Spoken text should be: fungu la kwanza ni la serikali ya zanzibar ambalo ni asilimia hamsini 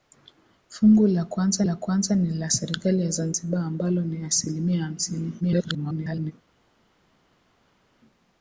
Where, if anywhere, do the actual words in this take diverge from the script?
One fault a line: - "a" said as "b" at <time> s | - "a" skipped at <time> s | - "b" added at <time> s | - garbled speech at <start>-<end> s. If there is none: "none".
- "la kwanza" added at 1.6 s
- garbled speech at 5.4-6.3 s